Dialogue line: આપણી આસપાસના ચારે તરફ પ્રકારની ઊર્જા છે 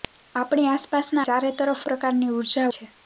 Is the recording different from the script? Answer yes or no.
no